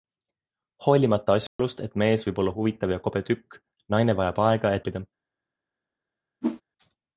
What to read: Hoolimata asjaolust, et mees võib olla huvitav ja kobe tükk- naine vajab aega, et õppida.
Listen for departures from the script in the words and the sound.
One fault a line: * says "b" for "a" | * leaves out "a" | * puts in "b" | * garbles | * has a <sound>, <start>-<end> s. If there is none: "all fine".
* has a dropout, 1.5-1.6 s
* has a whoosh, 6.4-6.6 s